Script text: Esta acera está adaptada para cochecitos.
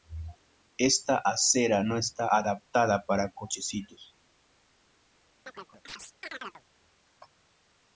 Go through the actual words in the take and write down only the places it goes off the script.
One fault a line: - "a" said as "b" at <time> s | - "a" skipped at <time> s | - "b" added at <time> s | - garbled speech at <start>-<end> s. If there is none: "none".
- "no" added at 1.8 s